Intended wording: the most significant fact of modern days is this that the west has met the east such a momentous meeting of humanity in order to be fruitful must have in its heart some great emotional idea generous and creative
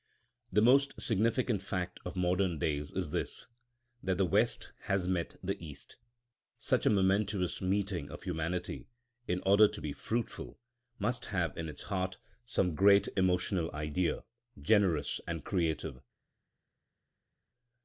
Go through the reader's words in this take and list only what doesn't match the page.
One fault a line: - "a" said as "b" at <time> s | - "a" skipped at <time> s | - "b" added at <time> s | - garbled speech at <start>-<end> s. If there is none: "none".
none